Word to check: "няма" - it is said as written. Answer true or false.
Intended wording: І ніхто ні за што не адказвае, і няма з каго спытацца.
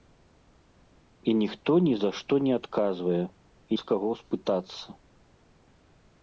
false